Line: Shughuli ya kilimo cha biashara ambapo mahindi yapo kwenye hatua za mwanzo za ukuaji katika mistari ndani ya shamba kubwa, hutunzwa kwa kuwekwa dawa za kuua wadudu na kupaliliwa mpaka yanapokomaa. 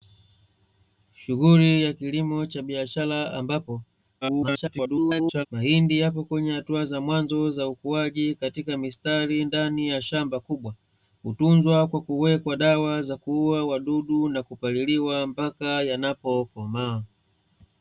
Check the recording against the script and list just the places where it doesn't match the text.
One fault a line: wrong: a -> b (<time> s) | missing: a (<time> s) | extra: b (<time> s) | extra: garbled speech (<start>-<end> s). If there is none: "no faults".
extra: garbled speech (4.2-5.5 s)